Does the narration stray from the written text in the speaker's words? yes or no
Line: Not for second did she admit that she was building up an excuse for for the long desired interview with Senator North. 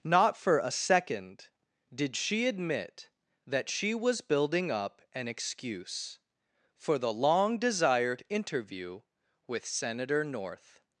yes